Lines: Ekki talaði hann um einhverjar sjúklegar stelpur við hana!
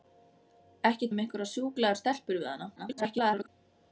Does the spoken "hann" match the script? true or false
false